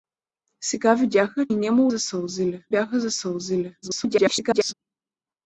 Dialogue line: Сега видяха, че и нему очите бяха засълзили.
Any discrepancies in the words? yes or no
yes